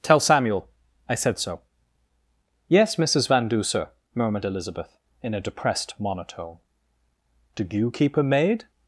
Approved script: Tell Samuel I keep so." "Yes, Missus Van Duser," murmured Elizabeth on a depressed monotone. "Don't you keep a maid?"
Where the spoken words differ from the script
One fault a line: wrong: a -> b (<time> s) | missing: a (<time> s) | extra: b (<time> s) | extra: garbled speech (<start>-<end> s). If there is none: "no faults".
wrong: keep -> said (1.1 s)
wrong: on -> in (5.2 s)
wrong: Don't -> Do (7.5 s)